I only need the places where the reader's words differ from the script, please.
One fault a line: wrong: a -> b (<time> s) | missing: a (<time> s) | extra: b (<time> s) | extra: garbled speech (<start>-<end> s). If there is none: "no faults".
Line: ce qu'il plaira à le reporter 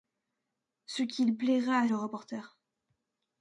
no faults